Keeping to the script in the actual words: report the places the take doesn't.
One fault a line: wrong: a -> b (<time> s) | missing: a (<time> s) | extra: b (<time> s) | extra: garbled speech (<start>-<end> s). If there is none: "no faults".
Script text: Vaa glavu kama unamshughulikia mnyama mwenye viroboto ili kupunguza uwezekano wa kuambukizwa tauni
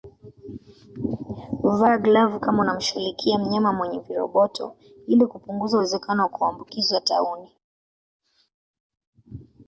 no faults